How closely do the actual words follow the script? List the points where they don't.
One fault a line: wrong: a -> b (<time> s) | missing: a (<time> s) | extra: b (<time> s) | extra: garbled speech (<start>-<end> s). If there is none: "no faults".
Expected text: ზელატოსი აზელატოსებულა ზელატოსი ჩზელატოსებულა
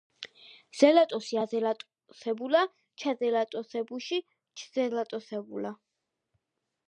wrong: ზელატოსი -> ჩაზელატოსებუში (3.0 s)